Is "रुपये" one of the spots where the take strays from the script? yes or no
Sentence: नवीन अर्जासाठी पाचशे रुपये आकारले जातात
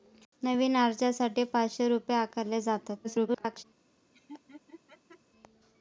no